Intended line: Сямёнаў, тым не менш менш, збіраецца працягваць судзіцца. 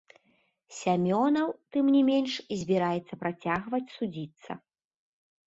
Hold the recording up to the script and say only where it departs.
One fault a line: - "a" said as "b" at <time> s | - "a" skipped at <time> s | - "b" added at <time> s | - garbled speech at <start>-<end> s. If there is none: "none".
- "менш" skipped at 2.3 s